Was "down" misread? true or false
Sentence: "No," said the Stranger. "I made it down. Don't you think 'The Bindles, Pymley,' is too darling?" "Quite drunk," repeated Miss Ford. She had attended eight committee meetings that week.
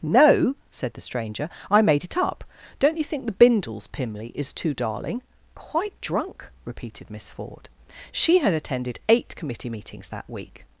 true